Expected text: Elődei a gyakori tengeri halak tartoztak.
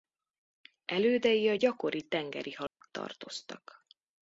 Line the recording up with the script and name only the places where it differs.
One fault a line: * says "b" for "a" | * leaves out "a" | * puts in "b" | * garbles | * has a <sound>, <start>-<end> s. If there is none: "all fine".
* has a dropout, 2.7-2.8 s